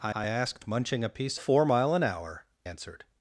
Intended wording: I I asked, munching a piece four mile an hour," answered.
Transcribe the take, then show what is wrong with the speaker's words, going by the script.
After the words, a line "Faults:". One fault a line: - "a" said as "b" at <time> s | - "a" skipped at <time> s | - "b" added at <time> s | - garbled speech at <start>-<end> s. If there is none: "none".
I I asked, munching a piece four mile an hour," answered.
Faults:
none